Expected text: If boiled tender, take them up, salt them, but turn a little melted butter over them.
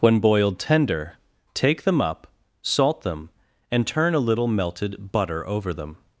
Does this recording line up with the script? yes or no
no